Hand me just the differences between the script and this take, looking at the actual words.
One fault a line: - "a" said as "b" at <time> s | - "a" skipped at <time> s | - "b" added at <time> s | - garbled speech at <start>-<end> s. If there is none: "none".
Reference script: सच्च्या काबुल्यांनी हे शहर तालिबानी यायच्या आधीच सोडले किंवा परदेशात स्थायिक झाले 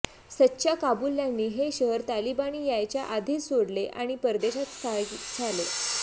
- "किंवा" said as "आणि" at 3.9 s